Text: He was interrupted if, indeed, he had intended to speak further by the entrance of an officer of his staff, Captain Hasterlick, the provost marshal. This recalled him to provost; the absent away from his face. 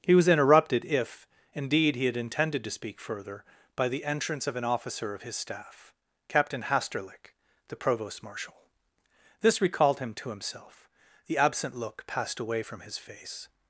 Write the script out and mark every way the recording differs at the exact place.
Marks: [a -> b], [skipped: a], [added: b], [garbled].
He was interrupted if, indeed, he had intended to speak further by the entrance of an officer of his staff, Captain Hasterlick, the provost marshal. This recalled him to [provost; -> himself] the absent [added: look passed] away from his face.